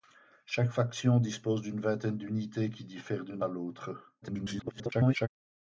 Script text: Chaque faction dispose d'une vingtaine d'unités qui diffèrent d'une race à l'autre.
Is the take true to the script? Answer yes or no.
no